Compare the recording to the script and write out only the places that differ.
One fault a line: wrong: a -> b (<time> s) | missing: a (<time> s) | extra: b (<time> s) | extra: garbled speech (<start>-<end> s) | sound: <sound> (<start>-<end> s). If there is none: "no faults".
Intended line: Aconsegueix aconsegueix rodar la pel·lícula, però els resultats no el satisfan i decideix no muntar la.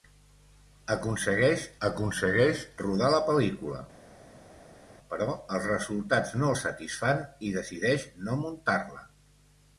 no faults